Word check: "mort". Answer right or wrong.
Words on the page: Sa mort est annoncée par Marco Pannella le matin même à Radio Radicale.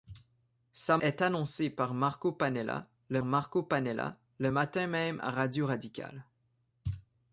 wrong